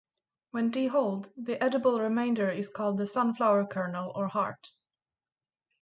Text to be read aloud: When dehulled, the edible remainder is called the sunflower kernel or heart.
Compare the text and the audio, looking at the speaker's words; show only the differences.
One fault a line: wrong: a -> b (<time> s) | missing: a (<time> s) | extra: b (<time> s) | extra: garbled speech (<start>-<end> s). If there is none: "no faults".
no faults